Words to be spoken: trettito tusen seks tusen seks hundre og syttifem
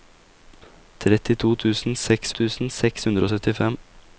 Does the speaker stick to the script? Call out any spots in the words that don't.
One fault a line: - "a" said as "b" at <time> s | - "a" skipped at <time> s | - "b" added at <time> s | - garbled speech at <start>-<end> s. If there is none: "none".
none